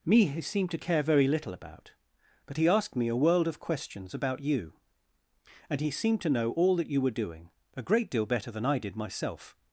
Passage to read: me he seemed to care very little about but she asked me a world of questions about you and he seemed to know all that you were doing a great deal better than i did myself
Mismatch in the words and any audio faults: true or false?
true